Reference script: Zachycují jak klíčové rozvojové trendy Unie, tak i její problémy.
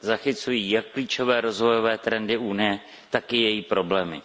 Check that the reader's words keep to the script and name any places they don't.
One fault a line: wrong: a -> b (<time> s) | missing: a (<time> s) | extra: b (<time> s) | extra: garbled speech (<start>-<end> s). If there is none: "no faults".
no faults